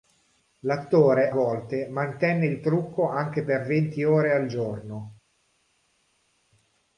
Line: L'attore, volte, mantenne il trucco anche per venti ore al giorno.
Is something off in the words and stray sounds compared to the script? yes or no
no